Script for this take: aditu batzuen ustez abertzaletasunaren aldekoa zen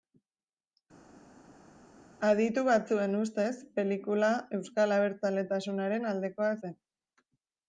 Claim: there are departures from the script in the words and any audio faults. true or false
true